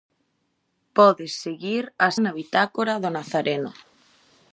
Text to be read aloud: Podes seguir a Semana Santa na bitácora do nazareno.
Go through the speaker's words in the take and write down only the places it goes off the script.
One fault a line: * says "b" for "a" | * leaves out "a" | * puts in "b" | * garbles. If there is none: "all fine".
* leaves out "Semana Santa"